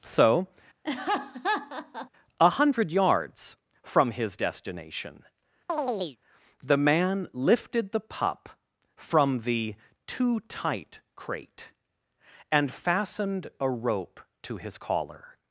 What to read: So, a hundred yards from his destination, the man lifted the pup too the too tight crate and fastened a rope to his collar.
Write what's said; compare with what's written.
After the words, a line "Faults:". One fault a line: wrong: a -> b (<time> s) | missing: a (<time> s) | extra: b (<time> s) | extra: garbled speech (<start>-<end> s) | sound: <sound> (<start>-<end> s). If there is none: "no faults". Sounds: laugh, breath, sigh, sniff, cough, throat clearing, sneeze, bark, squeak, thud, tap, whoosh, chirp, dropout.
So, a hundred yards from his destination, the man lifted the pup from the too tight crate and fastened a rope to his collar.
Faults:
sound: laugh (0.8-2.1 s)
sound: chirp (5.7-6.2 s)
wrong: too -> from (8.9 s)